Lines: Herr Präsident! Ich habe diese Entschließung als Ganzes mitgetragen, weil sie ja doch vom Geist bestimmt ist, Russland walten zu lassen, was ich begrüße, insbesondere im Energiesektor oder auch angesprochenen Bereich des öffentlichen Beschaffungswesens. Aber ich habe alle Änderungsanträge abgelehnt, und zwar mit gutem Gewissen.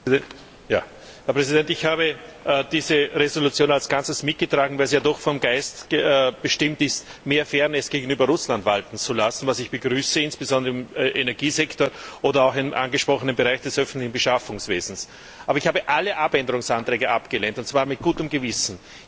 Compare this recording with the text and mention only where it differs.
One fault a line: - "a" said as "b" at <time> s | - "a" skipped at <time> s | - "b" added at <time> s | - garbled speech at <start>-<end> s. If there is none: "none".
- "mehr Fairness gegenüber" added at 7.2 s
- "im" added at 12.6 s